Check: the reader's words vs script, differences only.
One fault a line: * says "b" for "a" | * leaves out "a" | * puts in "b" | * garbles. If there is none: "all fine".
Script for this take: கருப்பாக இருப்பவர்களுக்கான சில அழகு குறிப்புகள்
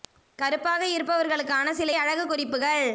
all fine